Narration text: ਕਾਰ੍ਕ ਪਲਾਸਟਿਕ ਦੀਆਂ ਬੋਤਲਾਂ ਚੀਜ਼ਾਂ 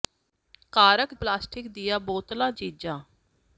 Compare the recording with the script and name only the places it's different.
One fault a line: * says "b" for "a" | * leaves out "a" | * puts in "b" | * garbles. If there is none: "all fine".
all fine